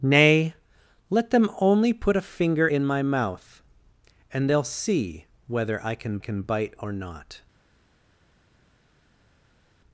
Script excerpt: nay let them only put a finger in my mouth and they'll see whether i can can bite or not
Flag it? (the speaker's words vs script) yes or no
no